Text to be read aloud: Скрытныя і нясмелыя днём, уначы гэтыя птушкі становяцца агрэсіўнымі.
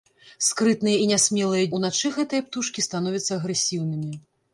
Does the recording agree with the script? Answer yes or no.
no